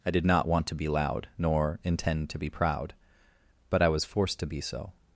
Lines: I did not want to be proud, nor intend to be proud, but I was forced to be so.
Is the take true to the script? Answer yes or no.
no